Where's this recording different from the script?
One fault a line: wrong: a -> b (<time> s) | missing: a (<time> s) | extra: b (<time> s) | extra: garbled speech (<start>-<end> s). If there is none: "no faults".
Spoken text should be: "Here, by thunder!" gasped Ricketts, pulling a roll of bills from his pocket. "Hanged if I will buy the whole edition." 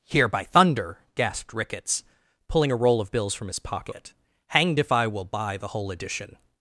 no faults